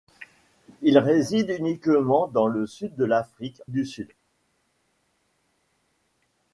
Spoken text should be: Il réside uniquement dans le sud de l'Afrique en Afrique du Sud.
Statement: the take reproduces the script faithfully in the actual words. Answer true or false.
false